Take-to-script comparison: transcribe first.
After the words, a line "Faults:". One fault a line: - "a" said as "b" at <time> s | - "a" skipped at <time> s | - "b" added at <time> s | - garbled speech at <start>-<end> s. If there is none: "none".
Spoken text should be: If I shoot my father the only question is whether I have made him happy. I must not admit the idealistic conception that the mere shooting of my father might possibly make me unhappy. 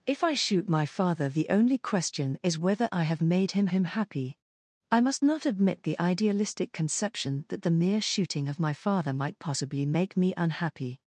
If I shoot my father the only question is whether I have made him him happy. I must not admit the idealistic conception that the mere shooting of my father might possibly make me unhappy.
Faults:
- "him" added at 3.7 s